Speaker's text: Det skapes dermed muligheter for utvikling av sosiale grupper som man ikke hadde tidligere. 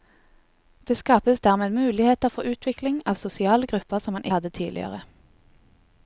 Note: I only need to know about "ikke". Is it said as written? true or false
false